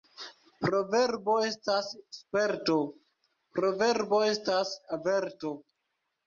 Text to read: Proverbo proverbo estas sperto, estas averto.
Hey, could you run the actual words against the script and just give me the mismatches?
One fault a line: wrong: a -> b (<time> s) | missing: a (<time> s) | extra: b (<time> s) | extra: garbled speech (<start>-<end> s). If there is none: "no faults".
missing: proverbo (1.4 s)
extra: proverbo (3.6 s)